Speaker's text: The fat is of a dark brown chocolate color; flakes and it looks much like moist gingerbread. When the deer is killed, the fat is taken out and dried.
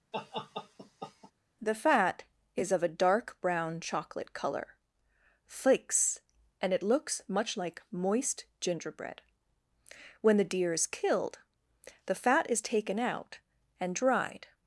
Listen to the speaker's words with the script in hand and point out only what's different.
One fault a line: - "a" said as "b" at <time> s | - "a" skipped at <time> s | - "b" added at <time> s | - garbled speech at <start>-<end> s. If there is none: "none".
none